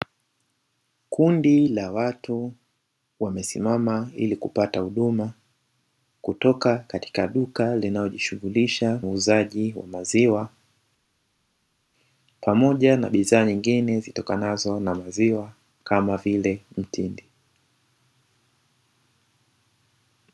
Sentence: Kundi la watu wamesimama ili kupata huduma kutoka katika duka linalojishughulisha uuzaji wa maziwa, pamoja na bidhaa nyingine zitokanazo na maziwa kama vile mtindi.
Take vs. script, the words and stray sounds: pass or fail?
pass